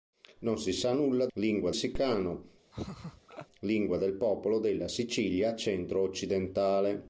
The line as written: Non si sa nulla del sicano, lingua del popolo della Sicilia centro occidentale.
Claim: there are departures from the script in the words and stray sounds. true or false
true